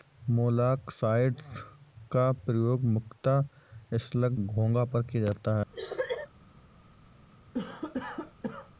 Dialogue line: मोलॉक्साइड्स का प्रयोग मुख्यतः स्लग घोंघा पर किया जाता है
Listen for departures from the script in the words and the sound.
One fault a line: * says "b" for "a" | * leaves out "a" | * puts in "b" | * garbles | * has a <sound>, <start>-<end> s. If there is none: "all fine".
* has a cough, 5.7-6.3 s
* has a cough, 7.5-8.7 s